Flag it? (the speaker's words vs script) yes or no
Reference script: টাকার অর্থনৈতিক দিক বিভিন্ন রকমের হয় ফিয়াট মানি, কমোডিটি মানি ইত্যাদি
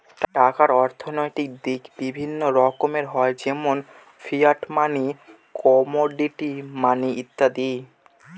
yes